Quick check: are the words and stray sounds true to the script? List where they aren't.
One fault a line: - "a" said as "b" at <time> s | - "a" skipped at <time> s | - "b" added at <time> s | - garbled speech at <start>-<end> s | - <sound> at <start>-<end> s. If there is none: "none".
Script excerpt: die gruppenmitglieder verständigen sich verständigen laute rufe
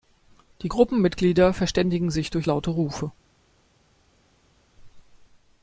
- "verständigen" said as "durch" at 2.3 s